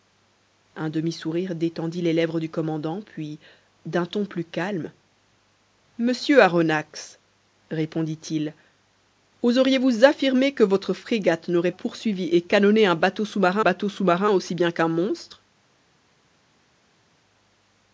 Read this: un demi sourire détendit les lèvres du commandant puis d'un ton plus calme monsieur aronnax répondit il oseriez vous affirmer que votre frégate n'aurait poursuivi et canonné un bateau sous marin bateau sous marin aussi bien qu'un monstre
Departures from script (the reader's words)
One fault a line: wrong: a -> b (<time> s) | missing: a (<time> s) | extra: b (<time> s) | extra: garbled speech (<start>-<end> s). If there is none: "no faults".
no faults